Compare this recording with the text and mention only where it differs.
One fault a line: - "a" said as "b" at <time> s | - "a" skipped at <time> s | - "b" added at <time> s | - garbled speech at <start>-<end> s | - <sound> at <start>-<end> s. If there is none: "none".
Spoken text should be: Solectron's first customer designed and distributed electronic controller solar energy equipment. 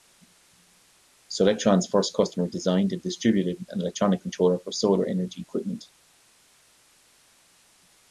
- "an" added at 3.7 s
- "for" added at 4.6 s